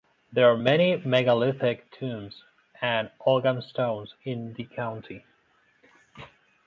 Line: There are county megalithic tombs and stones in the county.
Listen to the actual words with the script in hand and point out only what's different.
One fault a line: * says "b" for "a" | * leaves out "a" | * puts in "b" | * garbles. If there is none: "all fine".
* says "many" for "county"
* puts in "ogham"